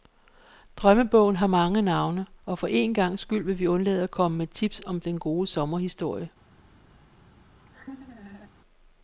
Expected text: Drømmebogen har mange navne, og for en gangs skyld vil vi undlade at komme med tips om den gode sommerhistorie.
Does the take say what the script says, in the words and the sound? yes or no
no